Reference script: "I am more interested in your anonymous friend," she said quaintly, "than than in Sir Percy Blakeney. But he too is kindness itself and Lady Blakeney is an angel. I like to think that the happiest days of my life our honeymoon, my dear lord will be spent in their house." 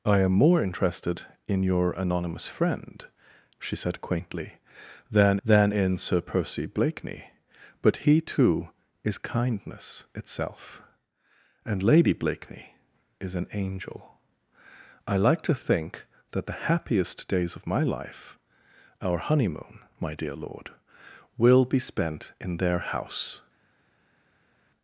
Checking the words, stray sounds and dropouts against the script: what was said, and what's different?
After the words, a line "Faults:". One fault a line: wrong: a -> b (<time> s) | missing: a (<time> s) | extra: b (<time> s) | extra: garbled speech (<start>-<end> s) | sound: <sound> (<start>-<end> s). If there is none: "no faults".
"I am more interested in your anonymous friend," she said quaintly, "than than in Sir Percy Blakeney. But he too is kindness itself and Lady Blakeney is an angel. I like to think that the happiest days of my life our honeymoon, my dear lord will be spent in their house."
Faults:
no faults